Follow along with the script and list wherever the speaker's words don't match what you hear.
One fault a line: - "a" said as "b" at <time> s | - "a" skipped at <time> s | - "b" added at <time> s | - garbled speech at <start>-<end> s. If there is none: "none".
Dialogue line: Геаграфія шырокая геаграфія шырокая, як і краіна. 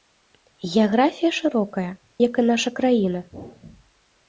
- "геаграфія шырокая" skipped at 1.9 s
- "наша" added at 2.5 s